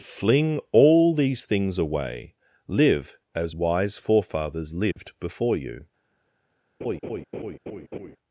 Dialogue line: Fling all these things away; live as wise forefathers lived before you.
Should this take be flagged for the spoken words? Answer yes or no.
no